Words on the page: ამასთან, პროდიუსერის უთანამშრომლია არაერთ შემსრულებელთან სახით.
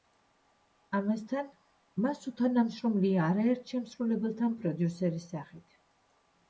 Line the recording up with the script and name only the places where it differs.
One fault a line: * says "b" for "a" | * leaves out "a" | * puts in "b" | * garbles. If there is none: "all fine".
* says "მას" for "პროდიუსერის"
* puts in "პროდიუსერის"